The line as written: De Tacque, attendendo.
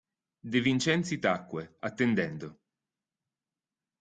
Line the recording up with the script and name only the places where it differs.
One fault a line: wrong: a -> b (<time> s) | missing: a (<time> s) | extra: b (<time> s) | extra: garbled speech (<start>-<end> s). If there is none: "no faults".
extra: Vincenzi (0.7 s)